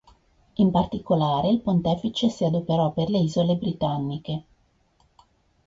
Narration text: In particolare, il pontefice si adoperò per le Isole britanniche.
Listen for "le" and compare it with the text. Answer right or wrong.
right